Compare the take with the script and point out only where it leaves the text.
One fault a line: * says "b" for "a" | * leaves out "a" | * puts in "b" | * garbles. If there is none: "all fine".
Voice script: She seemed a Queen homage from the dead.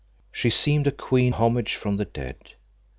all fine